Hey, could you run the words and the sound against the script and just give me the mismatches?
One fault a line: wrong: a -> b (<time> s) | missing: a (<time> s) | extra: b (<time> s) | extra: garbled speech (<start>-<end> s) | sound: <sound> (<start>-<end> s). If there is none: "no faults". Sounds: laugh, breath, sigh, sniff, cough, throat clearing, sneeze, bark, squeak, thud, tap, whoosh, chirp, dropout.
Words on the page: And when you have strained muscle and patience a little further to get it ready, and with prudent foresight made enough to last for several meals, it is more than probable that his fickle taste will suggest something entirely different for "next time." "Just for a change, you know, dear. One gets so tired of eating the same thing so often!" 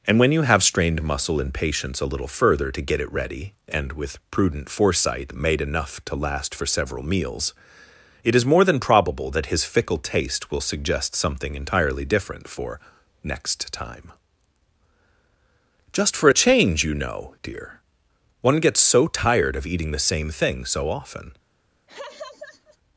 sound: laugh (21.9-22.8 s)